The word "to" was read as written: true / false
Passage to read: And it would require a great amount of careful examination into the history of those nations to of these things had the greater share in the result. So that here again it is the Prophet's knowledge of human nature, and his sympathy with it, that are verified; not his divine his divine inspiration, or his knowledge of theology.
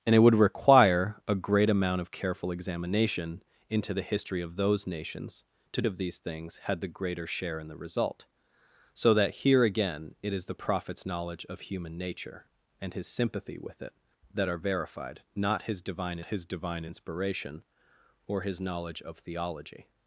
true